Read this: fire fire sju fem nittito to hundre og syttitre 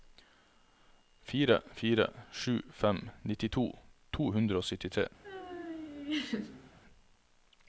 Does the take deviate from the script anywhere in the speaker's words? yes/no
no